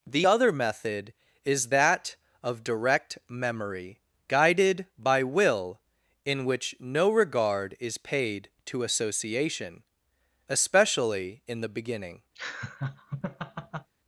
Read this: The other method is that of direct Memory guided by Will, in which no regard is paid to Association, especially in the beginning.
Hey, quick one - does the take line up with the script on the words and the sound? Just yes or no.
no